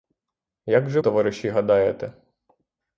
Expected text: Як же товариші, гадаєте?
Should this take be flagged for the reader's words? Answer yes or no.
no